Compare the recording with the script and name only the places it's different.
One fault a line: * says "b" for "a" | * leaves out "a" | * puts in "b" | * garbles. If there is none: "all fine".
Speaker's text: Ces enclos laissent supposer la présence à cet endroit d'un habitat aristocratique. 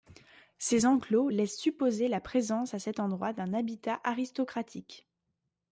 all fine